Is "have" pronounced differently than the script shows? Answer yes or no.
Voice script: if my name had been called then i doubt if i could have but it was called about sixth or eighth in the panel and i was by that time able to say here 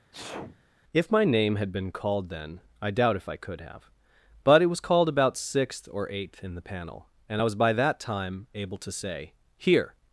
no